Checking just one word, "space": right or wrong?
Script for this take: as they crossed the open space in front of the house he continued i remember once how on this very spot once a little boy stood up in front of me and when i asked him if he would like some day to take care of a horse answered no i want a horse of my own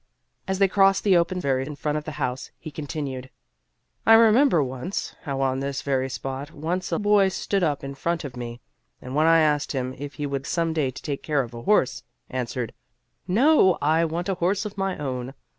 wrong